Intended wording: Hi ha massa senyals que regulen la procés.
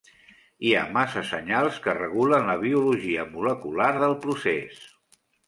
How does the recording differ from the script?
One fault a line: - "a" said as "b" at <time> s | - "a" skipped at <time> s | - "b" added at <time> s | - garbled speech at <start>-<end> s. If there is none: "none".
- "biologia molecular del" added at 2.6 s